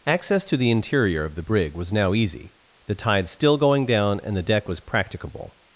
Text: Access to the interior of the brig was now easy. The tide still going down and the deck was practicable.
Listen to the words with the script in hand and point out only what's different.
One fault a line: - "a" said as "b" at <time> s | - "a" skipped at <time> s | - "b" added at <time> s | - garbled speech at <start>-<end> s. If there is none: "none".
none